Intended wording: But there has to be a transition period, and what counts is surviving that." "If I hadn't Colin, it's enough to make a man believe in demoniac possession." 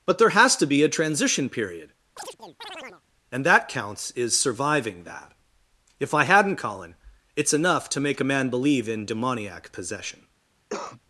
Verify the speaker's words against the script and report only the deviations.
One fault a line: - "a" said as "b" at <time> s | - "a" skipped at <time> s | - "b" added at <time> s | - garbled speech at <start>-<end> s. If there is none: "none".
- "what" said as "that" at 3.4 s